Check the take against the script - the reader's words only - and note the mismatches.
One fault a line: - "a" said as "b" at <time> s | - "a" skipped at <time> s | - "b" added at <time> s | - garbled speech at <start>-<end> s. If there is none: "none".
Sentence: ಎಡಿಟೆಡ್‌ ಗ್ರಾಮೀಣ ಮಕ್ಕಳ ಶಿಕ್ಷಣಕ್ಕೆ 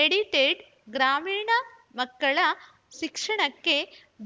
none